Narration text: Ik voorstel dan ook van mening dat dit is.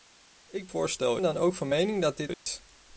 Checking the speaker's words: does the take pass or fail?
pass